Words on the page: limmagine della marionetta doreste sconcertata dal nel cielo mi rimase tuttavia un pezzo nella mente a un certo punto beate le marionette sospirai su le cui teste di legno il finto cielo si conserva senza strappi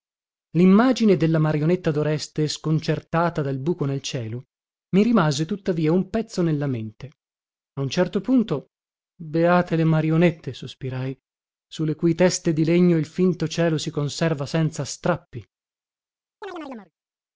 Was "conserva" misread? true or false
false